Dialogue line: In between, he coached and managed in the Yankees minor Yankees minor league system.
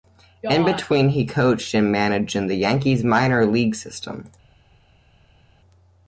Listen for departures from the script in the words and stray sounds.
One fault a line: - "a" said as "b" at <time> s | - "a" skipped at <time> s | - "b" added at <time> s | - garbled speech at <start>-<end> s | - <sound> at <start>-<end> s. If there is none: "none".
- "Yankees minor" skipped at 3.5 s